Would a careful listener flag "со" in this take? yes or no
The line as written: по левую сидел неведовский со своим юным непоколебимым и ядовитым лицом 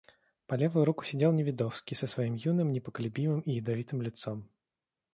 no